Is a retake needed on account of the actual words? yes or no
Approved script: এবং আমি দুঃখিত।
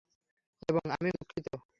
no